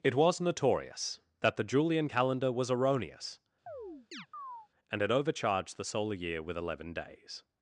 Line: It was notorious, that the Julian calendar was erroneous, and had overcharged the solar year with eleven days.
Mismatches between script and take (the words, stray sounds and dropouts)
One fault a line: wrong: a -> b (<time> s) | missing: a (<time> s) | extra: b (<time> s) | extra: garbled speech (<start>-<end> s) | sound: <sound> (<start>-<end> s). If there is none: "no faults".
sound: chirp (3.7-4.7 s)